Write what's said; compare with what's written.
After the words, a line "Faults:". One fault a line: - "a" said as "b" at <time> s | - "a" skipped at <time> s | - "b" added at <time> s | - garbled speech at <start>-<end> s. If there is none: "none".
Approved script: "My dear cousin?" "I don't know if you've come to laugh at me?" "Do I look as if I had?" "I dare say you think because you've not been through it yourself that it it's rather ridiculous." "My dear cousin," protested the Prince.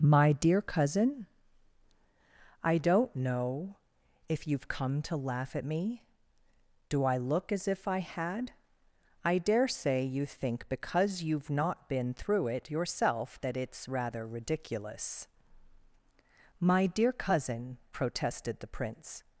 "My dear cousin?" "I don't know if you've come to laugh at me?" "Do I look as if I had?" "I dare say you think because you've not been through it yourself that it's rather ridiculous." "My dear cousin," protested the Prince.
Faults:
- "it" skipped at 13.6 s